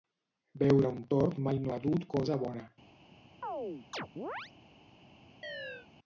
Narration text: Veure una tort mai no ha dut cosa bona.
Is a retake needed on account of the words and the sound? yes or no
yes